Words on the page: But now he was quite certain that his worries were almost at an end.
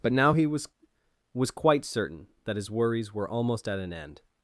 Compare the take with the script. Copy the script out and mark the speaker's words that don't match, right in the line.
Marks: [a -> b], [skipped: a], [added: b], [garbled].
But now he was [added: was] quite certain that his worries were almost at an end.